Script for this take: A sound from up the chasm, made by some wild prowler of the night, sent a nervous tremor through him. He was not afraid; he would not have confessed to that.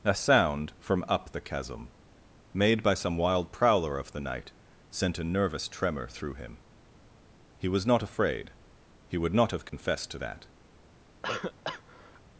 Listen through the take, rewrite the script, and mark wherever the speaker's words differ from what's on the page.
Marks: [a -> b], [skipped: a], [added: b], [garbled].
A sound from up the chasm, made by some wild prowler of the night, sent a nervous tremor through him. He was not afraid; he would not have confessed to that.